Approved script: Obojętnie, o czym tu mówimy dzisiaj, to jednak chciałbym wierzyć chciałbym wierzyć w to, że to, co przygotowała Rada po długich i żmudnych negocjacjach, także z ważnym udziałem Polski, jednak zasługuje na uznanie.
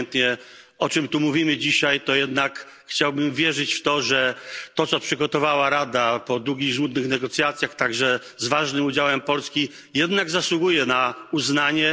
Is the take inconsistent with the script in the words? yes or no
yes